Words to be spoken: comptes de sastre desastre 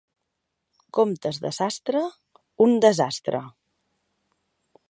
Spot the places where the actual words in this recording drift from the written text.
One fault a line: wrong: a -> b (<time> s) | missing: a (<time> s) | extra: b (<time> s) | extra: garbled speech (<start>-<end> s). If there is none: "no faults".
extra: un (2.7 s)